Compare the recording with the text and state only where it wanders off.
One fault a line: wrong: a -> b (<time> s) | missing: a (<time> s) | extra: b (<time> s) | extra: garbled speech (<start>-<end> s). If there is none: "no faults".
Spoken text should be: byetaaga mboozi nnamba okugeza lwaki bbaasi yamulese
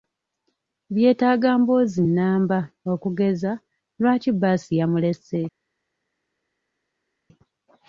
no faults